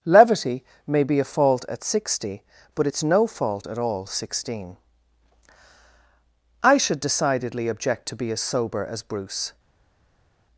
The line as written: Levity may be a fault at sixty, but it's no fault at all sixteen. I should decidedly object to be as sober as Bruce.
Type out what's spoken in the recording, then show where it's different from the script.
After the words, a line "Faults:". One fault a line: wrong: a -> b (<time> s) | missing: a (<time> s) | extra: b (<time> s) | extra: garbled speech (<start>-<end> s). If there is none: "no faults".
Levity may be a fault at sixty, but it's no fault at all sixteen. I should decidedly object to be as sober as Bruce.
Faults:
no faults